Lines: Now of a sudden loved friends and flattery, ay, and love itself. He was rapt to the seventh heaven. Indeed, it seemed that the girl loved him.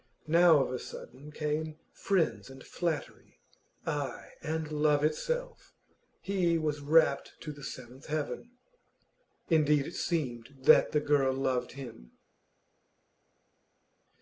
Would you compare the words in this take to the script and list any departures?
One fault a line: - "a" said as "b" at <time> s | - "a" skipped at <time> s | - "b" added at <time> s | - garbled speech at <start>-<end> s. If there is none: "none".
- "loved" said as "came" at 1.3 s